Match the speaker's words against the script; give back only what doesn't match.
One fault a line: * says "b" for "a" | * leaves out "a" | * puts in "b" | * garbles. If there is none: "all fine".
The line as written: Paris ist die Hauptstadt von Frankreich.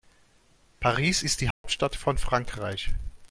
all fine